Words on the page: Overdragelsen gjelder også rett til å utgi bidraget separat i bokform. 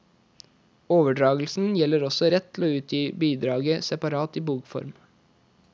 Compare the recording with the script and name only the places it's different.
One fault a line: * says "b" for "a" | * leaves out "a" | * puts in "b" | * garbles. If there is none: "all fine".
all fine